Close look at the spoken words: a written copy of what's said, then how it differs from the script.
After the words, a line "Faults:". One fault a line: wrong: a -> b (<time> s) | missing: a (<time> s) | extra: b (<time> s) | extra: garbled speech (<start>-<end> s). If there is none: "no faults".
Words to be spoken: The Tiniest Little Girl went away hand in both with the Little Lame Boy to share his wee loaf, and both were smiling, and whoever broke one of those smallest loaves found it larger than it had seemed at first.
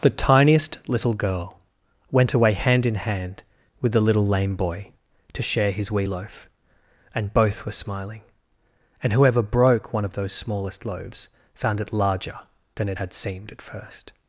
The Tiniest Little Girl went away hand in hand with the Little Lame Boy to share his wee loaf, and both were smiling, and whoever broke one of those smallest loaves found it larger than it had seemed at first.
Faults:
wrong: both -> hand (3.0 s)